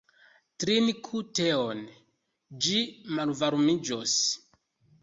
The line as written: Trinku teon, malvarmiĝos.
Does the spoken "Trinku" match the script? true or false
true